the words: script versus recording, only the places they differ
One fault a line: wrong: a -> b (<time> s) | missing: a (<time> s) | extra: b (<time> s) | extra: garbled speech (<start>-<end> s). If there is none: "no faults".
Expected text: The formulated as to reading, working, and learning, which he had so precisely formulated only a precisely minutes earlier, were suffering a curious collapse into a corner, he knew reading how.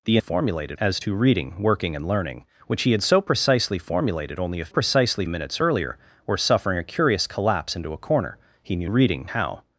no faults